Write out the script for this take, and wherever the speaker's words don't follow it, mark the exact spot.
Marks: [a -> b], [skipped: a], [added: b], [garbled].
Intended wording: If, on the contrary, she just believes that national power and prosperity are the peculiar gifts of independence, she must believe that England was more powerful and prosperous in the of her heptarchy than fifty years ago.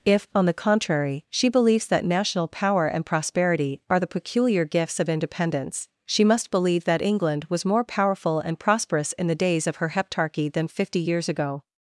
If, on the contrary, she [skipped: just] believes that national power and prosperity are the peculiar gifts of independence, she must believe that England was more powerful and prosperous in the [added: days] of her heptarchy than fifty years ago.